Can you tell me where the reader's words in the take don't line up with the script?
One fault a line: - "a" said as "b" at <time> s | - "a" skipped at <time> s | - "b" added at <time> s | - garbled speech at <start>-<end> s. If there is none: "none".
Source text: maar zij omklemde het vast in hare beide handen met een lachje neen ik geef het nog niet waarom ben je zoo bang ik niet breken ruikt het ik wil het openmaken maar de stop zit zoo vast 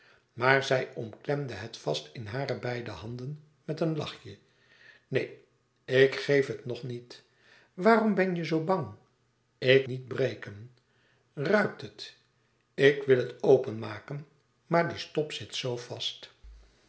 none